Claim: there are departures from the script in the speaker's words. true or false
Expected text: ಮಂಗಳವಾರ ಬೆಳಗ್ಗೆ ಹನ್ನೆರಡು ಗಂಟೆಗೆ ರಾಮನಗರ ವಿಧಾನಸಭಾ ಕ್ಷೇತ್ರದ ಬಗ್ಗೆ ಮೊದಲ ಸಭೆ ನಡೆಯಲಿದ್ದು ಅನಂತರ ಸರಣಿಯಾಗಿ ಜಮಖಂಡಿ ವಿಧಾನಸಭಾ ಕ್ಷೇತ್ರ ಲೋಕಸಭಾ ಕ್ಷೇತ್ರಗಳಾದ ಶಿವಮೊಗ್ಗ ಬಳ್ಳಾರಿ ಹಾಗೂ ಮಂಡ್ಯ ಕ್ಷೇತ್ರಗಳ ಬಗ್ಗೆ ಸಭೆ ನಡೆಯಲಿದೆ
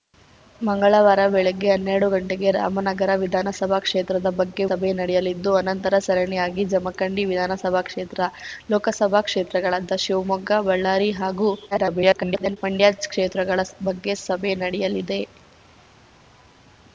true